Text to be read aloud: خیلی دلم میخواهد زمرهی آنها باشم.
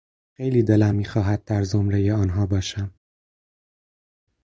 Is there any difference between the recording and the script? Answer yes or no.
yes